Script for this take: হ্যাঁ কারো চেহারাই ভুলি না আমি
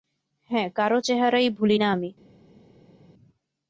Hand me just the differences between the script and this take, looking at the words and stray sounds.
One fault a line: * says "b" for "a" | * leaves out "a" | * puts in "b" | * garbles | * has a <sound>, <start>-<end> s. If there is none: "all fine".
all fine